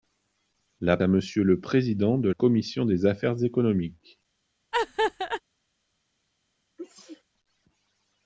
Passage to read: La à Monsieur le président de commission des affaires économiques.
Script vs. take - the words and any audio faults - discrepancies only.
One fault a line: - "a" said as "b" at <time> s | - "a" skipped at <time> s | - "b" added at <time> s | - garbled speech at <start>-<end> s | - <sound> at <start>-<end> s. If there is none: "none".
- laugh at 4.7-5.4 s
- sneeze at 6.8-7.2 s